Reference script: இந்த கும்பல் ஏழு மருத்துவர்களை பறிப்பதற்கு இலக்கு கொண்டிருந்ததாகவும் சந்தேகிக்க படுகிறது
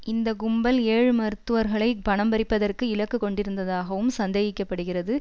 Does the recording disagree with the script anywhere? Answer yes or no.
yes